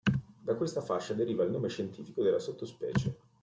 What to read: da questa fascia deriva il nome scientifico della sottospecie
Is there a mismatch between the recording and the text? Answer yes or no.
no